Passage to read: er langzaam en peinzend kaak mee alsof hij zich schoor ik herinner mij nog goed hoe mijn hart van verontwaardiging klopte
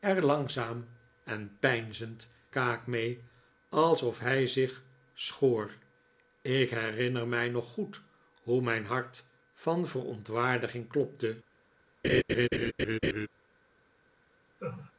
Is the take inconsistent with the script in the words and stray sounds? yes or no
yes